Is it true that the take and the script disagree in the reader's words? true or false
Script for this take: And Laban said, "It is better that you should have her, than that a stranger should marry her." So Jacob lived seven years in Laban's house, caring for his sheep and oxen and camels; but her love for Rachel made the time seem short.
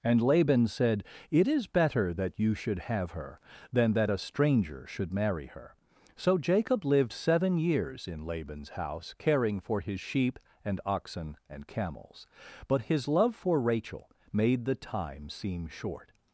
true